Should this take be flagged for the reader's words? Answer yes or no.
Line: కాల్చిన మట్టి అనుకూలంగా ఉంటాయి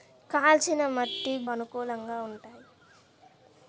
no